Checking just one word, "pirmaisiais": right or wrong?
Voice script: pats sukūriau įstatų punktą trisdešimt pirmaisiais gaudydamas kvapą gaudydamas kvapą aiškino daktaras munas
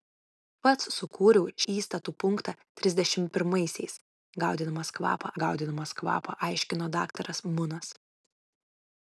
right